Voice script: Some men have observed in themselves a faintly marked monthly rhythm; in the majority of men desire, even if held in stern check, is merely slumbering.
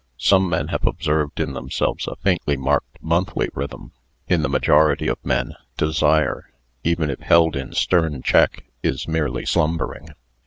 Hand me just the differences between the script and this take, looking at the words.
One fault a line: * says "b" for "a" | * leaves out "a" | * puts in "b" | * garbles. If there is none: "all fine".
all fine